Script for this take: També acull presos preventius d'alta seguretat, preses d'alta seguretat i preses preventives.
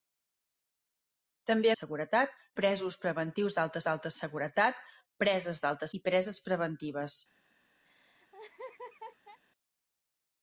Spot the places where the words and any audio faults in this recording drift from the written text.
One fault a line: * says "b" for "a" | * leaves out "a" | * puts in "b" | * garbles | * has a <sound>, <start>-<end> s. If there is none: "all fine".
* says "seguretat" for "acull"
* puts in "d'alta"
* leaves out "seguretat"
* has a laugh, 7.8-9.4 s